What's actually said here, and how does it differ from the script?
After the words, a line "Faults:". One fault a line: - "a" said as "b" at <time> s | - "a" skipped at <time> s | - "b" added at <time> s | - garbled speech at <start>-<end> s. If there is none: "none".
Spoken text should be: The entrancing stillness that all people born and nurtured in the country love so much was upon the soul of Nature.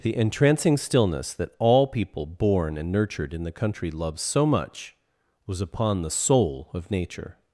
The entrancing stillness that all people born and nurtured in the country love so much was upon the soul of Nature.
Faults:
none